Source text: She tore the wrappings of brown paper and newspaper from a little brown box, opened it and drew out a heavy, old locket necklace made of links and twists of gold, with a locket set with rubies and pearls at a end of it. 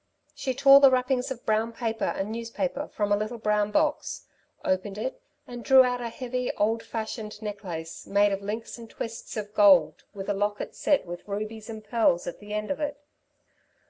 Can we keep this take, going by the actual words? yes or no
no